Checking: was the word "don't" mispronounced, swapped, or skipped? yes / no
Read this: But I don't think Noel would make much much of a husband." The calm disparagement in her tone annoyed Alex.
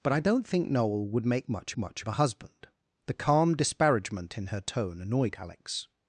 no